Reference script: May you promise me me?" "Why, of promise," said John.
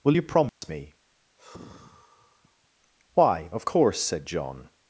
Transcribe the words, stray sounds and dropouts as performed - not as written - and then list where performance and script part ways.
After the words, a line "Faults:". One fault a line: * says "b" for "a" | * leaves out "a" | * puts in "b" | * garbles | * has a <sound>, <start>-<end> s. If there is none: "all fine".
Will you promise me?" "Why, of course," said John.
Faults:
* says "Will" for "May"
* has a dropout, 0.5-0.6 s
* leaves out "me"
* has a sigh, 1.4-2.7 s
* says "course" for "promise"